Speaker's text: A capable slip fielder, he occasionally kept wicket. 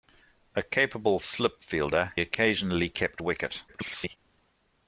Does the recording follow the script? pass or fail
fail